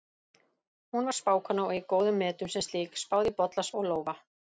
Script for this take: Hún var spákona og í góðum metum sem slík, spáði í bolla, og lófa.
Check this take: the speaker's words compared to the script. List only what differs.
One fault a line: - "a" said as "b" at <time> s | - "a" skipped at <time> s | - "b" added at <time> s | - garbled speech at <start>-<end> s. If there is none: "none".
none